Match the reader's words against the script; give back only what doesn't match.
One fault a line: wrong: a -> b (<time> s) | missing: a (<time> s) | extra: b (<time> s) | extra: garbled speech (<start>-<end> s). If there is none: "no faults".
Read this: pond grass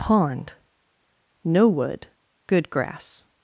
extra: no wood good (1.4 s)